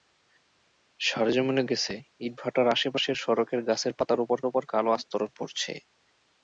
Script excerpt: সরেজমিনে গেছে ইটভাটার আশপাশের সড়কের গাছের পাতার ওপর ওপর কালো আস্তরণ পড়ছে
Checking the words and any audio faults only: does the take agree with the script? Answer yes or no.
yes